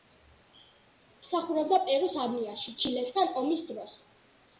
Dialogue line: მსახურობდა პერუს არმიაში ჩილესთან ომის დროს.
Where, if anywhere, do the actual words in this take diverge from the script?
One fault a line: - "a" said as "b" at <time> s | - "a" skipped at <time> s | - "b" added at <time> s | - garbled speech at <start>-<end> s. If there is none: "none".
none